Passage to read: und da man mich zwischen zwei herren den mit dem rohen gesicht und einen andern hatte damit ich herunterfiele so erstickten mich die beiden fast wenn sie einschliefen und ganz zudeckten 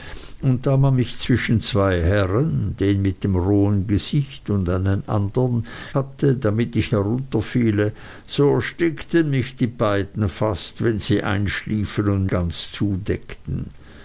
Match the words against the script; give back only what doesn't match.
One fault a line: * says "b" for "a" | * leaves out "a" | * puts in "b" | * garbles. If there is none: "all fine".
all fine